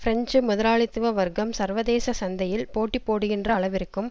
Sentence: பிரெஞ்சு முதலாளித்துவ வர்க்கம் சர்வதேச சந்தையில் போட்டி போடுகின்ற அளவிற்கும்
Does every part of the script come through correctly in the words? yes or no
yes